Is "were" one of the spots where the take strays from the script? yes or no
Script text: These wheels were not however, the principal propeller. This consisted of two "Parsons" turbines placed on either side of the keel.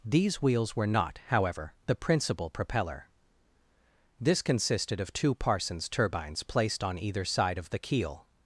no